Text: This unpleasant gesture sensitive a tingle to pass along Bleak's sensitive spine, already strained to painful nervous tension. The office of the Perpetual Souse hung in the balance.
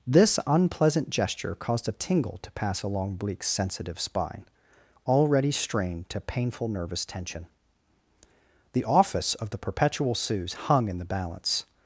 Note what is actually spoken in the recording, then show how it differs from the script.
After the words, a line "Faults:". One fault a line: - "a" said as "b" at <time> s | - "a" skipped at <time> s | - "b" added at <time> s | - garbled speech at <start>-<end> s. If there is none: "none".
This unpleasant gesture caused a tingle to pass along Bleak's sensitive spine, already strained to painful nervous tension. The office of the Perpetual Souse hung in the balance.
Faults:
- "sensitive" said as "caused" at 1.6 s